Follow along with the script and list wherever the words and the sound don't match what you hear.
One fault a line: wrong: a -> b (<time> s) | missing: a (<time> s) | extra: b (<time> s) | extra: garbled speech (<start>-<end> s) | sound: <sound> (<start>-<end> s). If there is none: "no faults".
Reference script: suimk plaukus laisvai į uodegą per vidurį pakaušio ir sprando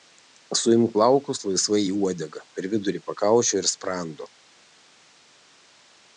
no faults